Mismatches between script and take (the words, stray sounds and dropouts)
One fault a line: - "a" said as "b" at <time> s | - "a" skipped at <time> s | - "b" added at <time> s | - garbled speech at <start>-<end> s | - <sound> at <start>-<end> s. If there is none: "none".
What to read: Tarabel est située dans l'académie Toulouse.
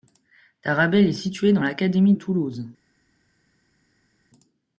none